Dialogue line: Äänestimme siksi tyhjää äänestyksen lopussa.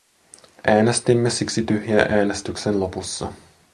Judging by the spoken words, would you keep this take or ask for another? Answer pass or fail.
pass